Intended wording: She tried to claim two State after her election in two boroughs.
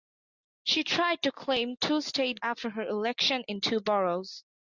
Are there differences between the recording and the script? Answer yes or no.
no